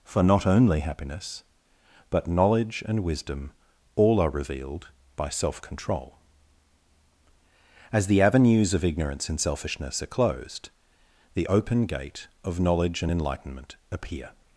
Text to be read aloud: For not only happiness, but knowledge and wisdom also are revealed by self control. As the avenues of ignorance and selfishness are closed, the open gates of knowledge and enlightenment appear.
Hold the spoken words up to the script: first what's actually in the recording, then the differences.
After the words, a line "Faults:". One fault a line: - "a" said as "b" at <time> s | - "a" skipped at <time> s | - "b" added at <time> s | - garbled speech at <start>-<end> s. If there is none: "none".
For not only happiness, but knowledge and wisdom all are revealed by self control. As the avenues of ignorance and selfishness are closed, the open gate of knowledge and enlightenment appear.
Faults:
- "also" said as "all" at 4.0 s
- "gates" said as "gate" at 11.9 s